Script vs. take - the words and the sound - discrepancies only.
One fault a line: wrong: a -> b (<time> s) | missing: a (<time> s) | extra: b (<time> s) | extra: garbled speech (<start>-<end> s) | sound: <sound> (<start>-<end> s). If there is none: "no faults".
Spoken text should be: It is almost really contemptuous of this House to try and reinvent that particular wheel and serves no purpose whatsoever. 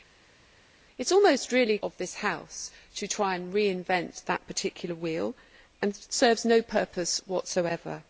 missing: contemptuous (1.8 s)